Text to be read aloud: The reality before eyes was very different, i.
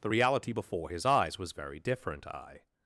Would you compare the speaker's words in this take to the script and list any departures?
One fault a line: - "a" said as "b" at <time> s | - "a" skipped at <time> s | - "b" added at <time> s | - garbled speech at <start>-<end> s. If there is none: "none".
- "his" added at 0.9 s